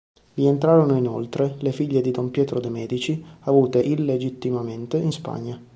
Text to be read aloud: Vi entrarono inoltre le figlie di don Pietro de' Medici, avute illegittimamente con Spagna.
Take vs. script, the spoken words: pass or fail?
fail